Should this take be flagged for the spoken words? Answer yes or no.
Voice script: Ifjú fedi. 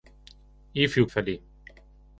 no